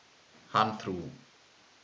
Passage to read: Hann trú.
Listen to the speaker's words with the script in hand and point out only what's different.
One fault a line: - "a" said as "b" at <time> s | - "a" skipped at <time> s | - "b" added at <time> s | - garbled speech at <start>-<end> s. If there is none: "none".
none